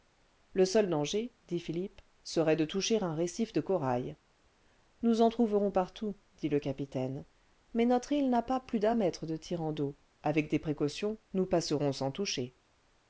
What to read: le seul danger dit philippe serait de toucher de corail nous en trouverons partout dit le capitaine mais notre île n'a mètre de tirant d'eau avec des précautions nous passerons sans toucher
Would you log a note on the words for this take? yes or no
yes